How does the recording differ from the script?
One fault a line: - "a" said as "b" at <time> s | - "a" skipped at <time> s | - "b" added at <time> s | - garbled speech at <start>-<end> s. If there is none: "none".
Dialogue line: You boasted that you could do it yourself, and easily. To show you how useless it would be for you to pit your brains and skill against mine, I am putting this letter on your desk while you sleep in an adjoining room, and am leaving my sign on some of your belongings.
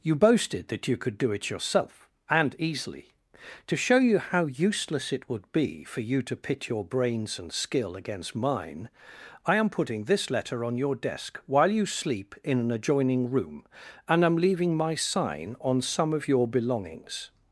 none